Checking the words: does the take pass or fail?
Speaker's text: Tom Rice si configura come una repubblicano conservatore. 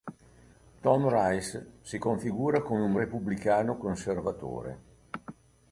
fail